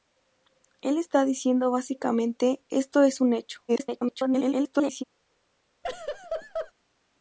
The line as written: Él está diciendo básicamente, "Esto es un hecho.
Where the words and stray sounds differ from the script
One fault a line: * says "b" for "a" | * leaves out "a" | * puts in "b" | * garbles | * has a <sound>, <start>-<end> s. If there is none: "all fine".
* garbles
* has a laugh, 5.8-6.7 s